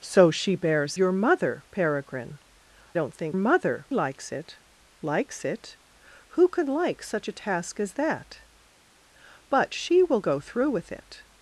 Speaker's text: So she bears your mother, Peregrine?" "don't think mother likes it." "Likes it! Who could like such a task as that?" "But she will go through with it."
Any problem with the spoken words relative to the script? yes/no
no